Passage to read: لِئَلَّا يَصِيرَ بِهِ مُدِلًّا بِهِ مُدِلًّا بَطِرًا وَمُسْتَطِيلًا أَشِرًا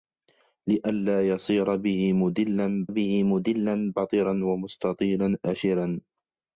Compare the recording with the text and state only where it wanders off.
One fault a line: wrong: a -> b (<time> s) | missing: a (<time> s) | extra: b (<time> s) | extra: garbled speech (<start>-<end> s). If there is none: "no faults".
no faults